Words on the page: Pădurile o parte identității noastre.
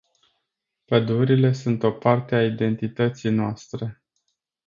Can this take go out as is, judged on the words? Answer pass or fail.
fail